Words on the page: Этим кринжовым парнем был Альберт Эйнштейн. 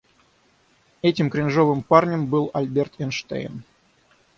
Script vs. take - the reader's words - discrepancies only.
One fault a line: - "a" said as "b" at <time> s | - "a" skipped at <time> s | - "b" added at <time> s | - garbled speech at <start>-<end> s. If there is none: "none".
none